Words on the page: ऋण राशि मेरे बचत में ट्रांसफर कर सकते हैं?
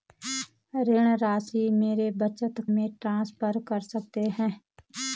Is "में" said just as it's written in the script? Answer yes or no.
yes